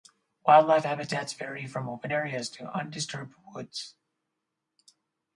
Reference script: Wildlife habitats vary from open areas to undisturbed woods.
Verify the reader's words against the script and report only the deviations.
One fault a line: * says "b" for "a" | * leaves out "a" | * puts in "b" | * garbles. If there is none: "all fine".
all fine